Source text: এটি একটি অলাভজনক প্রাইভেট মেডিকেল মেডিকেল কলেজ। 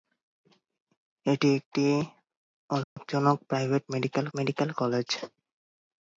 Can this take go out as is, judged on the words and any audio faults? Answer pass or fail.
fail